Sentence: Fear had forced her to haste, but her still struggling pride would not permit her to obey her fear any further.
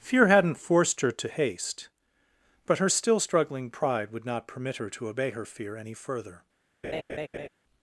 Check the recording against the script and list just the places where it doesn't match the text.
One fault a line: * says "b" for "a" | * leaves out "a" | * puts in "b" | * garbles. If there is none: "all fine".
* says "hadn't" for "had"